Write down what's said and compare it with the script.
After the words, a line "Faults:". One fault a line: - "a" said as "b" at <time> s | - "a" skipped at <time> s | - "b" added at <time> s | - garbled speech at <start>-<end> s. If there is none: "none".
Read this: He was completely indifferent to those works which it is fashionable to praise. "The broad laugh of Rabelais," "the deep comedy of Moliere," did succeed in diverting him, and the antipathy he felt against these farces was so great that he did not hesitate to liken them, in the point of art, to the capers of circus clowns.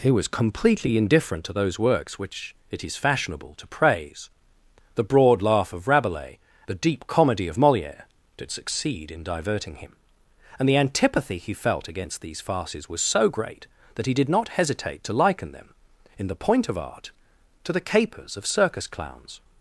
He was completely indifferent to those works which it is fashionable to praise. "The broad laugh of Rabelais," "the deep comedy of Moliere," did succeed in diverting him, and the antipathy he felt against these farces was so great that he did not hesitate to liken them, in the point of art, to the capers of circus clowns.
Faults:
none